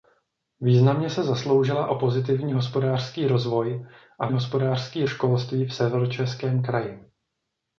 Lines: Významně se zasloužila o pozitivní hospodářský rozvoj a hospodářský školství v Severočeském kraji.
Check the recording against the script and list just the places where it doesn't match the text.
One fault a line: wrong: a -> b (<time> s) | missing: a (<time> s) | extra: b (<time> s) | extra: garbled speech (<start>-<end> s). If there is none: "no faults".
no faults